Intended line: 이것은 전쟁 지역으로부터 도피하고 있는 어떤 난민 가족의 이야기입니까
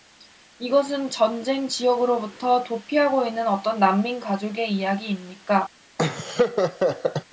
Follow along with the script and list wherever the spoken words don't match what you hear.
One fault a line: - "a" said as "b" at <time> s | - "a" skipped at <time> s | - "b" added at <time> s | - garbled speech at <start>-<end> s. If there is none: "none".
none